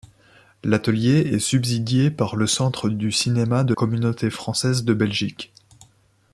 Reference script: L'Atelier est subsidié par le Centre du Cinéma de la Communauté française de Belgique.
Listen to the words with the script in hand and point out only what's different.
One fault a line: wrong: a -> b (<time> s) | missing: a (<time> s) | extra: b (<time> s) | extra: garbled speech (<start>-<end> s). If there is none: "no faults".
missing: la (3.8 s)